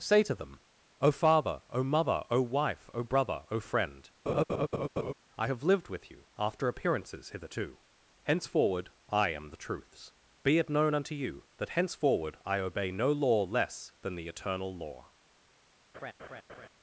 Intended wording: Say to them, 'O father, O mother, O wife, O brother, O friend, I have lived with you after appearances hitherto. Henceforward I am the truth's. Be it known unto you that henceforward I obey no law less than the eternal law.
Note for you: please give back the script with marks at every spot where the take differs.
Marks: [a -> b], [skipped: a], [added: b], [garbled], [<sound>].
Say to them, 'O father, O mother, O wife, O brother, O friend, [laugh] I have lived with you after appearances hitherto. Henceforward I am the truth's. Be it known unto you that henceforward I obey no law less than the eternal law. [laugh]